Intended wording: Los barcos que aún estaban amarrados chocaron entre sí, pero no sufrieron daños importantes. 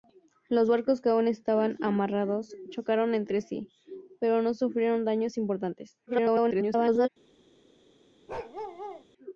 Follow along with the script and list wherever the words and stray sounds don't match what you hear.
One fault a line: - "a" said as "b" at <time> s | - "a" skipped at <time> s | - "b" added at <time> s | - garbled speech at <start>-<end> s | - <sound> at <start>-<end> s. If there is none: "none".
- garbled speech at 6.1-7.1 s
- bark at 8.3-9.0 s